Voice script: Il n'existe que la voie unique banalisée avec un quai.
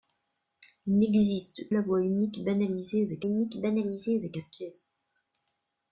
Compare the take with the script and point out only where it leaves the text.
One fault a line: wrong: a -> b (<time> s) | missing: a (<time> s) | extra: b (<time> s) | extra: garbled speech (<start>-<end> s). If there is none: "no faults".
missing: que (1.7 s)
extra: unique banalisée avec (3.2 s)